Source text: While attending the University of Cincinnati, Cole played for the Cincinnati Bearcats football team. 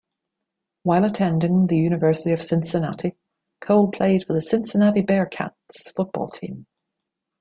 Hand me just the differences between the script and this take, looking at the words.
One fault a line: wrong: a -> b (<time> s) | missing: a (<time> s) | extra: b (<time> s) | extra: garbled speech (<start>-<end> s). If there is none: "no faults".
no faults